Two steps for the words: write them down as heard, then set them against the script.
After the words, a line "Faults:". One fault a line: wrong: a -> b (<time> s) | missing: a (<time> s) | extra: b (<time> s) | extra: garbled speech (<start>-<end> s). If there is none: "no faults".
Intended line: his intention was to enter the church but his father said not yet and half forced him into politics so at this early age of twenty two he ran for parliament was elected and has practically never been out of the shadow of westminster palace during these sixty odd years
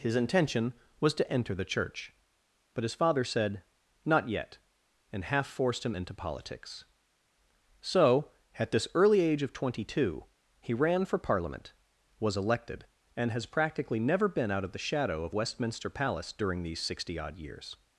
his intention was to enter the church but his father said not yet and half forced him into politics so at this early age of twenty two he ran for parliament was elected and has practically never been out of the shadow of westminster palace during these sixty odd years
Faults:
no faults